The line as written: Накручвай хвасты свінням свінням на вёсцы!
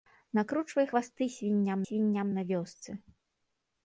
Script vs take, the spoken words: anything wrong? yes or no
no